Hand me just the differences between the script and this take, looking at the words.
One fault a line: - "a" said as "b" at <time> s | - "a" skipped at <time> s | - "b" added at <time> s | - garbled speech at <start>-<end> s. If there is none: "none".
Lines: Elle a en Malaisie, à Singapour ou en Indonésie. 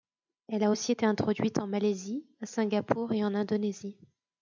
- "aussi été introduite" added at 0.7 s
- "ou" said as "et" at 3.1 s